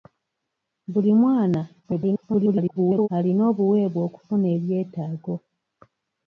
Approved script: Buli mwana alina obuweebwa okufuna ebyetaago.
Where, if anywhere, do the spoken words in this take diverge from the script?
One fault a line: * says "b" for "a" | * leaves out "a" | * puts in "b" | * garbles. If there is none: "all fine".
* garbles